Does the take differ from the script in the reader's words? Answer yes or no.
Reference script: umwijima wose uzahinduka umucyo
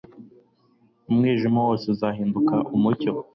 no